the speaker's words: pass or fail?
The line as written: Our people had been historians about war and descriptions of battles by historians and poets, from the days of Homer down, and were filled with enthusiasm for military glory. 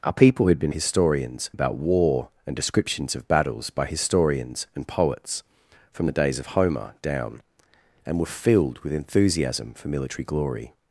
pass